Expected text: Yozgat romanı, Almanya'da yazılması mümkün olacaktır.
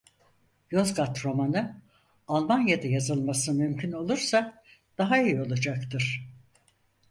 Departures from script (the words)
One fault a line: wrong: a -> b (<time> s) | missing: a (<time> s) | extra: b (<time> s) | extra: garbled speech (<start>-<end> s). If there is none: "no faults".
extra: olursa daha iyi (3.9 s)